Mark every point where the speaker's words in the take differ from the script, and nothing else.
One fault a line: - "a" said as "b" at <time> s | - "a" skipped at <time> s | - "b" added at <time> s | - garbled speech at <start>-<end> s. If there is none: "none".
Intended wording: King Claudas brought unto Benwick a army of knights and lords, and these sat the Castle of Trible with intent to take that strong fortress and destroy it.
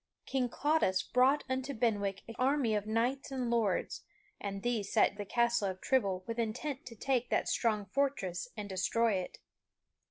none